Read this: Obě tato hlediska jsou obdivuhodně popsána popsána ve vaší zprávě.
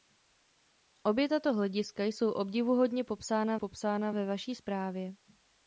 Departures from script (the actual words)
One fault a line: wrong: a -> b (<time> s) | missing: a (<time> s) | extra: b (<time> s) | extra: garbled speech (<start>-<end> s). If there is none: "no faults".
no faults